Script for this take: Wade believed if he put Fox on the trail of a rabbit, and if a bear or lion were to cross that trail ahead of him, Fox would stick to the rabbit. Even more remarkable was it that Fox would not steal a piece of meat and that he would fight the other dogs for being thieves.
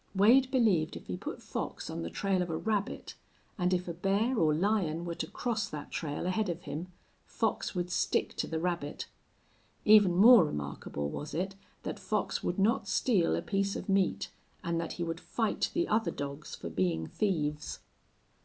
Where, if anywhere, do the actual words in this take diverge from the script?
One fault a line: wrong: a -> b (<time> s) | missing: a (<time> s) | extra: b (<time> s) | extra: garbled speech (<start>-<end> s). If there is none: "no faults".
no faults